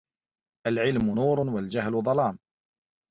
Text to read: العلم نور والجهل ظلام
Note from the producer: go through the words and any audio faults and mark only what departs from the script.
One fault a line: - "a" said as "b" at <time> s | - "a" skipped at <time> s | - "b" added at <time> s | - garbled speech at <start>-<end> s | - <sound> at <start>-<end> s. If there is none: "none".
none